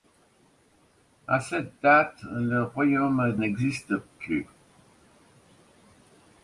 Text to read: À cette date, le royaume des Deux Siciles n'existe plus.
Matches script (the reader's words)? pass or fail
fail